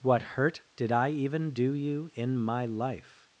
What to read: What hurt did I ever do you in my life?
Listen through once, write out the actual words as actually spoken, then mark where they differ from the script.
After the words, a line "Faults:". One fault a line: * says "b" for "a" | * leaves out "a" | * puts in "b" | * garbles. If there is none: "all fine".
What hurt did I even do you in my life?
Faults:
* says "even" for "ever"